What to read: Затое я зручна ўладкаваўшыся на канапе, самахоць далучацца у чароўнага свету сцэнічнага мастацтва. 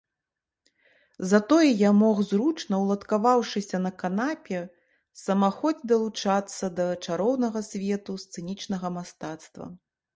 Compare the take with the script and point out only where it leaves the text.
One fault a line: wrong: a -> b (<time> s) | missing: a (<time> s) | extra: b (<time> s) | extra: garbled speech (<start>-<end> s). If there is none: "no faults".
extra: мог (2.0 s)
wrong: у -> да (6.8 s)